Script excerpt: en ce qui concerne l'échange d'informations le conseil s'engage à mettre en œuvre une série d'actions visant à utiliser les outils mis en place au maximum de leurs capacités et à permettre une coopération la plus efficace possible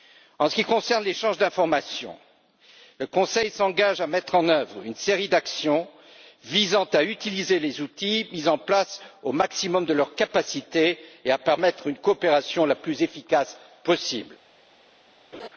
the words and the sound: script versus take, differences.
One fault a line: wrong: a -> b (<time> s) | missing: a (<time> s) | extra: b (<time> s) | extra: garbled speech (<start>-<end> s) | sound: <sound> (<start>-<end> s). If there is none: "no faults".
sound: laugh (15.3-15.5 s)